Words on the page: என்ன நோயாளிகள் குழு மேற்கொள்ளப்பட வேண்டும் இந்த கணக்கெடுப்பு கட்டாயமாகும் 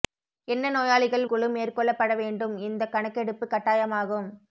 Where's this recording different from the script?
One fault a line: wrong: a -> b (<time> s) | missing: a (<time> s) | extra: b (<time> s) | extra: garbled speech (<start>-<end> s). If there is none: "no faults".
no faults